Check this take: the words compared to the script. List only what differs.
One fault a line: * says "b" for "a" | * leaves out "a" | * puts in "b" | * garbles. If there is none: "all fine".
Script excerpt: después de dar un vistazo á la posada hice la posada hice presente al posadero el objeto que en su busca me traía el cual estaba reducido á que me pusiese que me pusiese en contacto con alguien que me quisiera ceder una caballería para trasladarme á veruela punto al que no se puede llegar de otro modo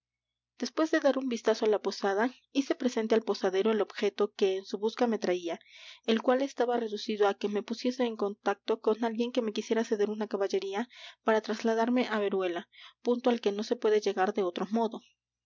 * leaves out "la posada hice"
* leaves out "que me pusiese"